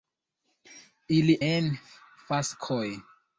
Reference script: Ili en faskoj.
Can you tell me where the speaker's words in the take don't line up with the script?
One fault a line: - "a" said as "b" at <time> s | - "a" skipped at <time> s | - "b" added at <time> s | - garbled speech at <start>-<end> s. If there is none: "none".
none